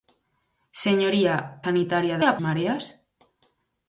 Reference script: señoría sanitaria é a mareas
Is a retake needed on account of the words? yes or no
no